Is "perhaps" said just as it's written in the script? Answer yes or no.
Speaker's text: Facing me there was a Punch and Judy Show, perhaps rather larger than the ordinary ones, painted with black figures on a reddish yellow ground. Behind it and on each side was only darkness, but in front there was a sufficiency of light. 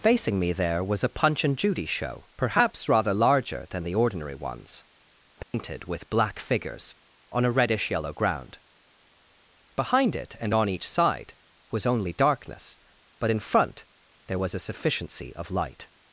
yes